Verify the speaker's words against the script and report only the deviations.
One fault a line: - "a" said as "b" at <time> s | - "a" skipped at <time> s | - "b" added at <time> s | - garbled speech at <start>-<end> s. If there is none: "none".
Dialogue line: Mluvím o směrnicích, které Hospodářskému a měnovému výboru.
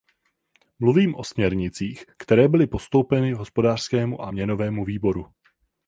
- "byly postoupeny" added at 2.5 s